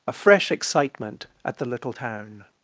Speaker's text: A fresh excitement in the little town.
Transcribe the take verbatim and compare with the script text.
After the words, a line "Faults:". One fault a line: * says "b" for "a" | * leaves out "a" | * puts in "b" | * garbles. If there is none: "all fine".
A fresh excitement at the little town.
Faults:
* says "at" for "in"